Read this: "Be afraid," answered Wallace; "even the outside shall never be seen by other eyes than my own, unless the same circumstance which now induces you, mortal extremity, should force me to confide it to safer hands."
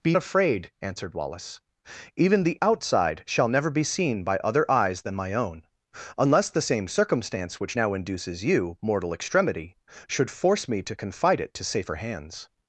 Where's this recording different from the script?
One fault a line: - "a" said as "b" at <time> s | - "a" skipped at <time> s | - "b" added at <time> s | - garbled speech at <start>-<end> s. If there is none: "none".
none